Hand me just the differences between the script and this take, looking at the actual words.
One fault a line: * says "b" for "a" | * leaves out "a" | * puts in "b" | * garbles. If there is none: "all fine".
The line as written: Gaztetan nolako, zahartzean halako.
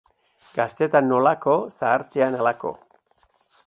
all fine